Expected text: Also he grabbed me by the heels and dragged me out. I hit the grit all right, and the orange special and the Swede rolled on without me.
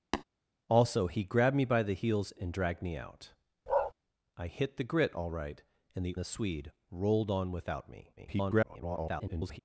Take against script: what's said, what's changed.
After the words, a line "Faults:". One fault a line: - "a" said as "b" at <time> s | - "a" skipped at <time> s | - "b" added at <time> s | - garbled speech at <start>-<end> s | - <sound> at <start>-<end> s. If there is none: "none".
Also he grabbed me by the heels and dragged me out. I hit the grit all right, and the the Swede rolled on without me. [garbled]
Faults:
- tap at 0.1-0.2 s
- bark at 3.7-3.9 s
- "orange special and" skipped at 6.2 s
- garbled speech at 8.2-9.6 s